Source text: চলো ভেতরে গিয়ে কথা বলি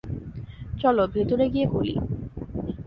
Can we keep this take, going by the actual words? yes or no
no